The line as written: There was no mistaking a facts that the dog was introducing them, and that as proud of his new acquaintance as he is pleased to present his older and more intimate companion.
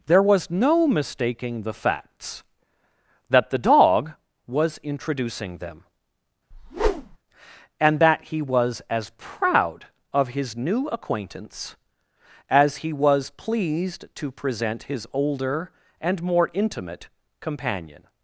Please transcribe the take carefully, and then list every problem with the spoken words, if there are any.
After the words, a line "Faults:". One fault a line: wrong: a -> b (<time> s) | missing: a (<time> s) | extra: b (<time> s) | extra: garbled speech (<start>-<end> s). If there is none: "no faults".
There was no mistaking the facts that the dog was introducing them, and that he was as proud of his new acquaintance as he was pleased to present his older and more intimate companion.
Faults:
wrong: a -> the (1.6 s)
extra: he was (8.3 s)
wrong: is -> was (12.9 s)